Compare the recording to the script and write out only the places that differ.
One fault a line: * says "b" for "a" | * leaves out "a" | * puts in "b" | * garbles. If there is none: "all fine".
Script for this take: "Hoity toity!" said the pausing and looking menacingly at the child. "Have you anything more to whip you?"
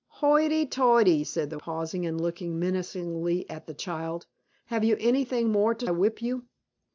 all fine